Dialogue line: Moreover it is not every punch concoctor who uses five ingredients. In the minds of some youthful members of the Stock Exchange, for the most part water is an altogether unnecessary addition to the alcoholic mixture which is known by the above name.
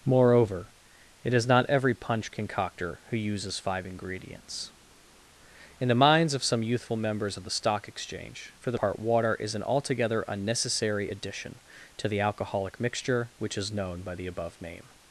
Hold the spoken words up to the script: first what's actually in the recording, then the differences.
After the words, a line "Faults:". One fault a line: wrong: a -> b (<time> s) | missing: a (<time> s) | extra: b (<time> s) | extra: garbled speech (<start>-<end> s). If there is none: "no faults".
Moreover it is not every punch concoctor who uses five ingredients. In the minds of some youthful members of the Stock Exchange, for the part water is an altogether unnecessary addition to the alcoholic mixture which is known by the above name.
Faults:
missing: most (8.8 s)